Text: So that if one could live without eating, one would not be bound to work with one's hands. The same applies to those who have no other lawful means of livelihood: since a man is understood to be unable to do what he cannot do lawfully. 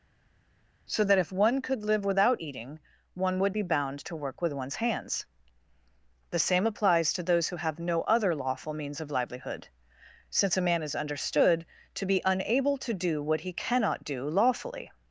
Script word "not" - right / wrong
wrong